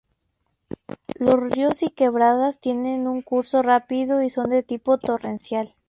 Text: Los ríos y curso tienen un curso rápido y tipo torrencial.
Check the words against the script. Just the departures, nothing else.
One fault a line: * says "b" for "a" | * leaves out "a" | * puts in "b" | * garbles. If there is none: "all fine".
* says "quebradas" for "curso"
* puts in "son de"